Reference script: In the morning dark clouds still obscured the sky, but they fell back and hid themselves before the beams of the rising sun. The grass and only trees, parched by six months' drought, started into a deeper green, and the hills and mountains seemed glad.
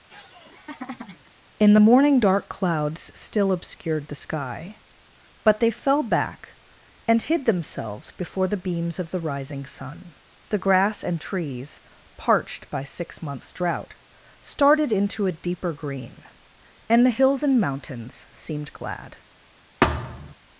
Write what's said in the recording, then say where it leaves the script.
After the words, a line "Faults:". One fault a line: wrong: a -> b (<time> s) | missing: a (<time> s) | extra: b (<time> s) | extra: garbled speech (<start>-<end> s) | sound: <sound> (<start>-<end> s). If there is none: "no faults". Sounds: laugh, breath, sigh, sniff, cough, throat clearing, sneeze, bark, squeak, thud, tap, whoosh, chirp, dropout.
In the morning dark clouds still obscured the sky, but they fell back and hid themselves before the beams of the rising sun. The grass and trees, parched by six months' drought, started into a deeper green, and the hills and mountains seemed glad.
Faults:
sound: laugh (0.1-1.3 s)
missing: only (11.2 s)
sound: thud (19.8-20.3 s)